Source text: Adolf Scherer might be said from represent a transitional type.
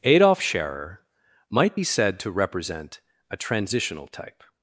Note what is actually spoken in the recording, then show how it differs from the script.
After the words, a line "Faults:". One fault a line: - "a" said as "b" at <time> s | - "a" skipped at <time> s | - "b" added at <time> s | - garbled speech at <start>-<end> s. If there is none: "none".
Adolf Scherer might be said to represent a transitional type.
Faults:
- "from" said as "to" at 2.2 s